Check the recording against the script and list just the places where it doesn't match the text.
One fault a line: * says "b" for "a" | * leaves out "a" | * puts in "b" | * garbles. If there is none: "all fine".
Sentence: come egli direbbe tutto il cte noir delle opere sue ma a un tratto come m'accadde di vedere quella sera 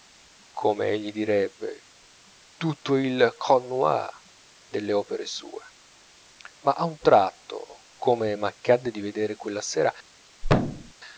all fine